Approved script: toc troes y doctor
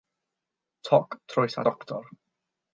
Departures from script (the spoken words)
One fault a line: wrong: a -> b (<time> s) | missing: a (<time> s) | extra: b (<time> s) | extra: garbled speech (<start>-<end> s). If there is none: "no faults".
no faults